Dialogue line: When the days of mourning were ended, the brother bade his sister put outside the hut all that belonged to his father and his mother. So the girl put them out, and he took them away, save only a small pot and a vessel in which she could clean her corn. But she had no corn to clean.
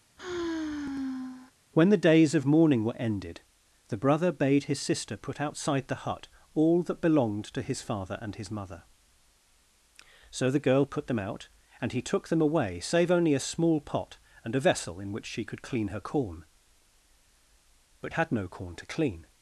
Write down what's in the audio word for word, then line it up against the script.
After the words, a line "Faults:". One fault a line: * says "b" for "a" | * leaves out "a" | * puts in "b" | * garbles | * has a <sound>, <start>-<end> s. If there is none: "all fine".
When the days of mourning were ended, the brother bade his sister put outside the hut all that belonged to his father and his mother. So the girl put them out, and he took them away, save only a small pot and a vessel in which she could clean her corn. But had no corn to clean.
Faults:
* has a sigh, 0.2-1.5 s
* leaves out "she"